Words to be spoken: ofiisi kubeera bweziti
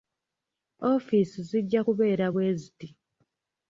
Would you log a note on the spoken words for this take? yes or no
yes